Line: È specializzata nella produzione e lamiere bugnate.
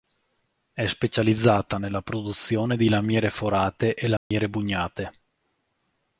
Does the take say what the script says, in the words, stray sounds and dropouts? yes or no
no